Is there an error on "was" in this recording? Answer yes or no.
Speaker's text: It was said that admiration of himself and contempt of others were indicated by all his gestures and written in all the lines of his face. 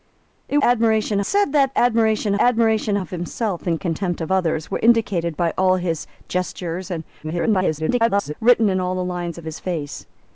yes